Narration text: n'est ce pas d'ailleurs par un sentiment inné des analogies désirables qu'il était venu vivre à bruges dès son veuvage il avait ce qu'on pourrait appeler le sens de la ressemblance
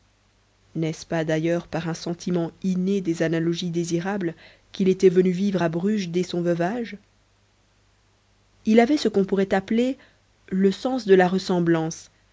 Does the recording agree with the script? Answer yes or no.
yes